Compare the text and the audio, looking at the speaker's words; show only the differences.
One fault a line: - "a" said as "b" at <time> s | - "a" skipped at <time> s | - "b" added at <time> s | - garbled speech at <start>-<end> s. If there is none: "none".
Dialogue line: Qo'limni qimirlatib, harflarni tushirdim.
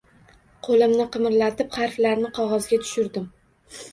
- "qog'ozga" added at 2.4 s